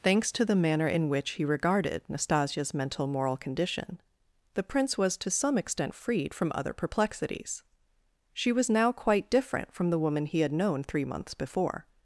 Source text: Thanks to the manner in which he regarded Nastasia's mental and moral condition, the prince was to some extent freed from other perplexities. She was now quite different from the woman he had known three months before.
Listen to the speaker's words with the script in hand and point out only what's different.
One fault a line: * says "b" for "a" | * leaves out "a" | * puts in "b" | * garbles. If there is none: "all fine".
* leaves out "and"